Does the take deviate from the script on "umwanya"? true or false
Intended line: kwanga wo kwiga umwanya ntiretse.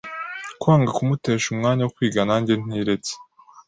true